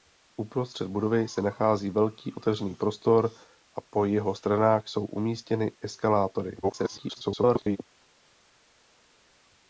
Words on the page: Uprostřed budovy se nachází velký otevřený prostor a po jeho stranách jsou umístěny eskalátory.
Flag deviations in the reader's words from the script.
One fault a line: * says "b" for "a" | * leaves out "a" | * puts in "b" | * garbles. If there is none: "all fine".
* garbles